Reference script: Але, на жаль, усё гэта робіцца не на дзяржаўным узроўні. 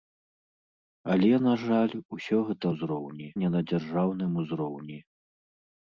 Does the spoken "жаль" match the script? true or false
true